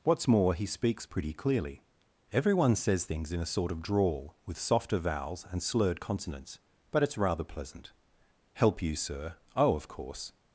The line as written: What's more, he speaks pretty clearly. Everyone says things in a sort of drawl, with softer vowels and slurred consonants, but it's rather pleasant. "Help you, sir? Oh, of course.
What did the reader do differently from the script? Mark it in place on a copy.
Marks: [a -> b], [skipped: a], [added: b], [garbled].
What's more, he speaks pretty clearly. Everyone says things in a sort of drawl, with softer vowels and slurred consonants, but it's rather pleasant. "Help you, sir? Oh, of course.